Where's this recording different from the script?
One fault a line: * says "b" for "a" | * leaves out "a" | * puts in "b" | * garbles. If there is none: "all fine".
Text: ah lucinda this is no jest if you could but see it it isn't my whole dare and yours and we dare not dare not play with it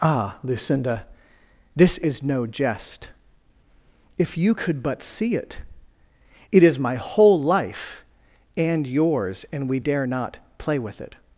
* says "is" for "isn't"
* says "life" for "dare"
* leaves out "dare not"